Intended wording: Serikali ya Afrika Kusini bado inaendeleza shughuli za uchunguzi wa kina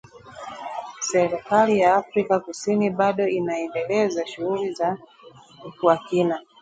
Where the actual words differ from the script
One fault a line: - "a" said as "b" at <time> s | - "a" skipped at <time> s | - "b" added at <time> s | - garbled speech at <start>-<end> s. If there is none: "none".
- "uchunguzi" skipped at 5.0 s